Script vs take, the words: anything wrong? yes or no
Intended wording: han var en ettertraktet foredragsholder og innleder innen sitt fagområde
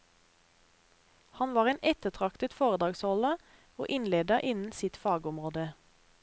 no